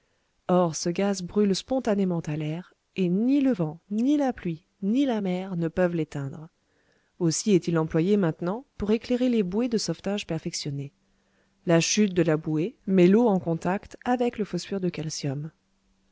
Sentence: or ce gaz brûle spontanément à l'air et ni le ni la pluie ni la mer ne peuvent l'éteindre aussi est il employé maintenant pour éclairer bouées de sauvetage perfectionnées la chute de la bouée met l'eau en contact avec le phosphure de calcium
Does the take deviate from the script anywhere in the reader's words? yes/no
yes